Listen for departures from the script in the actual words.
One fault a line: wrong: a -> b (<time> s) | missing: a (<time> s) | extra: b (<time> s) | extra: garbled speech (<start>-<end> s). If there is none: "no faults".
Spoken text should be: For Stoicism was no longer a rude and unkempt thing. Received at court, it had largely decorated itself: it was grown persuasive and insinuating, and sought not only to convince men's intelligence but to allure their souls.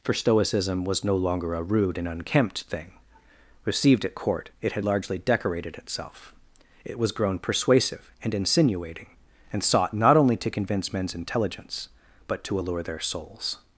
no faults